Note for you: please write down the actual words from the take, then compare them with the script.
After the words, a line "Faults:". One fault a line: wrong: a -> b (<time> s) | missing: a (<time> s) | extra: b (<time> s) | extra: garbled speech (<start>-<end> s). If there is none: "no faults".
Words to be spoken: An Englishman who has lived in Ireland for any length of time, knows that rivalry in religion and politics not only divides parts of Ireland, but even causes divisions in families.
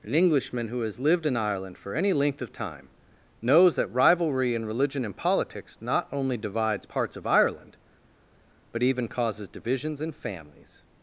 An Englishman who has lived in Ireland for any length of time, knows that rivalry in religion and politics not only divides parts of Ireland, but even causes divisions in families.
Faults:
no faults